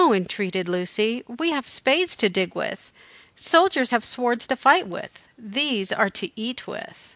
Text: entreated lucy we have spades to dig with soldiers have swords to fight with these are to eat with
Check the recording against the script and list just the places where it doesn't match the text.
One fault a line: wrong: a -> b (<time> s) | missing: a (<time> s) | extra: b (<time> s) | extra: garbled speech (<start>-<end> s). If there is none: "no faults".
no faults